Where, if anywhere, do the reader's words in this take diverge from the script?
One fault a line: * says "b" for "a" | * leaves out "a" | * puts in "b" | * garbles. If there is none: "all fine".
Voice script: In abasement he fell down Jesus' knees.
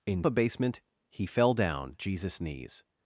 all fine